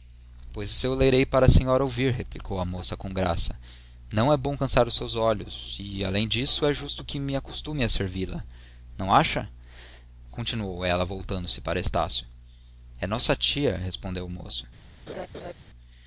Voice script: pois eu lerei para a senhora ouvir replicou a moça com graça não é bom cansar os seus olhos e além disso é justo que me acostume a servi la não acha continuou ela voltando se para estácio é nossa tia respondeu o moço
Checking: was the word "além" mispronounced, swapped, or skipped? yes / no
no